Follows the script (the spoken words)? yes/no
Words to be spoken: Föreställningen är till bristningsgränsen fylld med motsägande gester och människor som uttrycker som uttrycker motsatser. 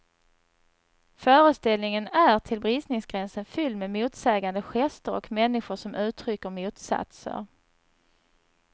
no